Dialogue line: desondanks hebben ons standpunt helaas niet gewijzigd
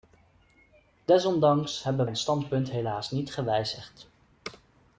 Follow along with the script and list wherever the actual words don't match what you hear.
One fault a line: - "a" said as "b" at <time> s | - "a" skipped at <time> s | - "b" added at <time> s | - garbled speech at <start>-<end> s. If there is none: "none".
none